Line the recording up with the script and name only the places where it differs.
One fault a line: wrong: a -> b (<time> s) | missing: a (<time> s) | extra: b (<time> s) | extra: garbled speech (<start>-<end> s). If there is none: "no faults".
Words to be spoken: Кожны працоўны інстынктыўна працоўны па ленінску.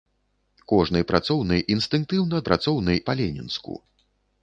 no faults